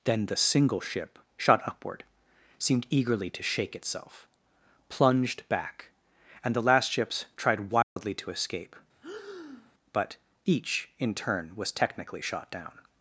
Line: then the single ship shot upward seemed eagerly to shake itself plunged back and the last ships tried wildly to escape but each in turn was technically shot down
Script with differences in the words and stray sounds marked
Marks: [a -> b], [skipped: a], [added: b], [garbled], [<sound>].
then the single ship shot upward seemed eagerly to shake itself plunged back and the last ships tried wildly [dropout] to escape [breath] but each in turn was technically shot down